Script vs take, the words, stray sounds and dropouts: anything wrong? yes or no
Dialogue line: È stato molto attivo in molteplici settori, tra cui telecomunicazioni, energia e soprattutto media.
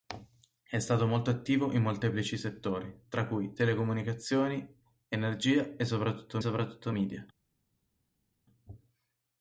yes